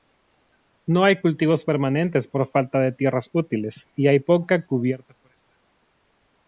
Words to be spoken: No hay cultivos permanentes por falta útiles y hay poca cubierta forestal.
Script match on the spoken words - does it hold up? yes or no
no